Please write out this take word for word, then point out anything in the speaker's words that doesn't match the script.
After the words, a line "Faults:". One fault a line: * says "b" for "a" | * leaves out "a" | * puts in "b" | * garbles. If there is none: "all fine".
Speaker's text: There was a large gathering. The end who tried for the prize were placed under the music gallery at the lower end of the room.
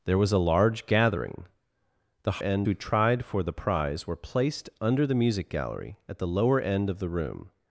There was a large gathering. The end who tried for the prize were placed under the music gallery at the lower end of the room.
Faults:
all fine